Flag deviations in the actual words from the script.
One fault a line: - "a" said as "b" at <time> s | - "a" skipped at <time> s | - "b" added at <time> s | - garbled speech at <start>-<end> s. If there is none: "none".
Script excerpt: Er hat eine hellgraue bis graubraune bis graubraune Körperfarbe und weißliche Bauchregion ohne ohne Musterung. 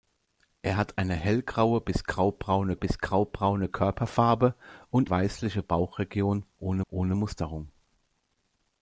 none